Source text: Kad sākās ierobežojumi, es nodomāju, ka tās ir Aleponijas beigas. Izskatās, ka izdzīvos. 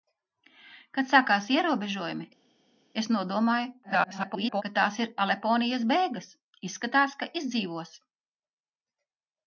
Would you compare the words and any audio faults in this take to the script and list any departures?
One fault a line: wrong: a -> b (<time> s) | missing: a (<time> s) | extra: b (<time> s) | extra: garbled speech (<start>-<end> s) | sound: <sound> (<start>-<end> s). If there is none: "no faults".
extra: garbled speech (3.8-4.6 s)